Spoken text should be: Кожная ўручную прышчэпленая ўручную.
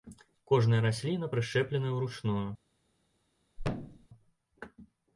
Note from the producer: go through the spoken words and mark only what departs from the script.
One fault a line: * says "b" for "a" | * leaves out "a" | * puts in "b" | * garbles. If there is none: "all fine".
* says "расліна" for "ўручную"